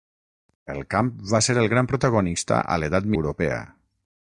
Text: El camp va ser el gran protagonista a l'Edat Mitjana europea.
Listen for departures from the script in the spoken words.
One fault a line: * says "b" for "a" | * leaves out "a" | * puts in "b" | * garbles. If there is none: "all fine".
* leaves out "Mitjana"